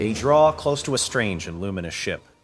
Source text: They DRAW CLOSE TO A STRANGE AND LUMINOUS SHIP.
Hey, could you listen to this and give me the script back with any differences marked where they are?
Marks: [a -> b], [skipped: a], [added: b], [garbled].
They DRAW CLOSE TO A STRANGE AND LUMINOUS SHIP.